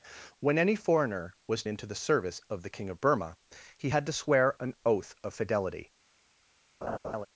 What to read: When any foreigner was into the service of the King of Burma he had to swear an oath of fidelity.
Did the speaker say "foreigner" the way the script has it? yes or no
yes